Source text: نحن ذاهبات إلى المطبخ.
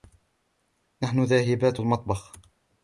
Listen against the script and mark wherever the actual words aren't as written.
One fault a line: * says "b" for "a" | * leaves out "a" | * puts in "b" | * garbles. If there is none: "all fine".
* leaves out "إلى"